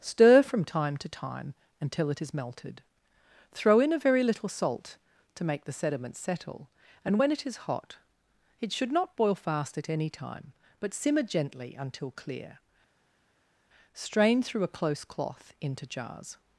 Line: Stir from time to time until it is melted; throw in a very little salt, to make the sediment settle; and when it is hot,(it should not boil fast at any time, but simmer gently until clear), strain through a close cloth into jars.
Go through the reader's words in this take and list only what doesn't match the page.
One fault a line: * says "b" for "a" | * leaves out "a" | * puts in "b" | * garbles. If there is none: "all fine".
all fine